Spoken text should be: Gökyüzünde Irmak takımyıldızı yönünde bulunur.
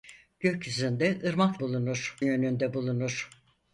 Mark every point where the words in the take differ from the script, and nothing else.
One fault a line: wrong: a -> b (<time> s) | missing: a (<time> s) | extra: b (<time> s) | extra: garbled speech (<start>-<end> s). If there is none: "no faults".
wrong: takımyıldızı -> bulunur (1.6 s)